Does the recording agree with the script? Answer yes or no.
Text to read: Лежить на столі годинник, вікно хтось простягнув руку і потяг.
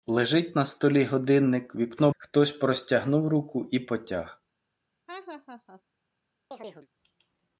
yes